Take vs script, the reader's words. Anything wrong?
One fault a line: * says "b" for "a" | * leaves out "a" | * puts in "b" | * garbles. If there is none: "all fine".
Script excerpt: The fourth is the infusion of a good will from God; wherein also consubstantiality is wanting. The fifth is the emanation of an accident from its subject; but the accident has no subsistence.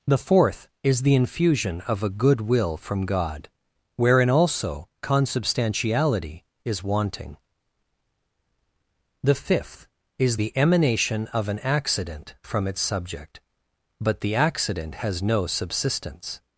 all fine